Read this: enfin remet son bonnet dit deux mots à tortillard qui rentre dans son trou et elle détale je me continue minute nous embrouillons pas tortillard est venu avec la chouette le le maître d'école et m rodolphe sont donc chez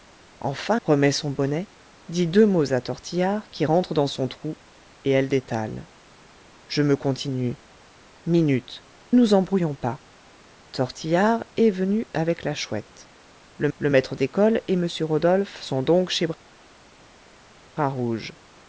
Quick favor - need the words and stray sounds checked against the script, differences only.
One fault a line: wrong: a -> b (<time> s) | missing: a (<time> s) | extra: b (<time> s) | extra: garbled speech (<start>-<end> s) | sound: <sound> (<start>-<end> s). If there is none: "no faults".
no faults